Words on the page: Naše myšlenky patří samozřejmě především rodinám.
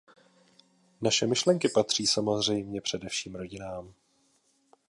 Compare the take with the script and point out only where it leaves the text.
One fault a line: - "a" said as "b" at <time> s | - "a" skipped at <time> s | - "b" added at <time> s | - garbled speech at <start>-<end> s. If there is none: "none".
none